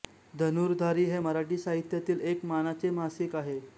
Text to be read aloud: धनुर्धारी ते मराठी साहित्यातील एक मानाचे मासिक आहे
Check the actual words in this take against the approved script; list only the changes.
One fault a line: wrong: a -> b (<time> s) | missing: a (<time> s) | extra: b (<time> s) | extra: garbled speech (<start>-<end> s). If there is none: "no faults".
wrong: ते -> हे (1.1 s)